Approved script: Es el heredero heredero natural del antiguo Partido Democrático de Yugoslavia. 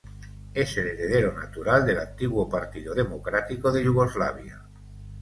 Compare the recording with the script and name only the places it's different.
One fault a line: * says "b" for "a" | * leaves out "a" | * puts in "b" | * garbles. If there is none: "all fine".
* leaves out "heredero"